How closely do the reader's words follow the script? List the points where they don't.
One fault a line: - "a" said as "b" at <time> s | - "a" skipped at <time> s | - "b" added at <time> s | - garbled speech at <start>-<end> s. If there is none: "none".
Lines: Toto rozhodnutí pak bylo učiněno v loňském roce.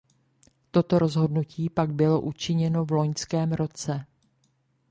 none